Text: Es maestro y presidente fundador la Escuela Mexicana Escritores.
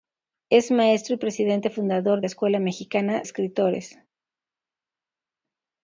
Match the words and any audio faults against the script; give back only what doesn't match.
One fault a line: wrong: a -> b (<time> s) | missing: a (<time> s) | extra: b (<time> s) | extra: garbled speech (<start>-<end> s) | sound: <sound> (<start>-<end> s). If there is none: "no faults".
no faults